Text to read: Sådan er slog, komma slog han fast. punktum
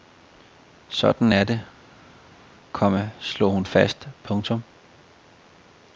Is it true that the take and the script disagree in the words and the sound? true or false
true